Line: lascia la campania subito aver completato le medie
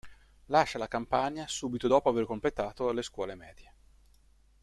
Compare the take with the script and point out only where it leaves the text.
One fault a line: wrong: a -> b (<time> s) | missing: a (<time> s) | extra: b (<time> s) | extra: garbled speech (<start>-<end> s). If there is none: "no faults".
extra: dopo (1.9 s)
extra: scuole (3.0 s)